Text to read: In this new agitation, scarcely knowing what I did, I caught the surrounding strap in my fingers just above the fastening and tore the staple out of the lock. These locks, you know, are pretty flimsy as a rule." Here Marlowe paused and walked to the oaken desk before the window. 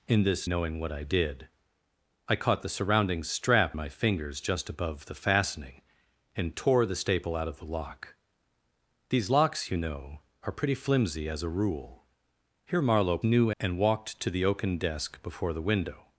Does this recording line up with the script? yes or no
no